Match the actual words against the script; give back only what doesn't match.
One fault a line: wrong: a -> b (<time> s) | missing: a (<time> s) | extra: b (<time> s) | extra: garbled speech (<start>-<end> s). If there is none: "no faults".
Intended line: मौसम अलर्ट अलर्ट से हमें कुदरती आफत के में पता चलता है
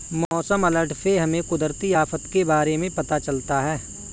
missing: अलर्ट (0.9 s)
extra: बारे (2.4 s)